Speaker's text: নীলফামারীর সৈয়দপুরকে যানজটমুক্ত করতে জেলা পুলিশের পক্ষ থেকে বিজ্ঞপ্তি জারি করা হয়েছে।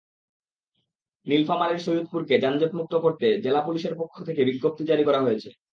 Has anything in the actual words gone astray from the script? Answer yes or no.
no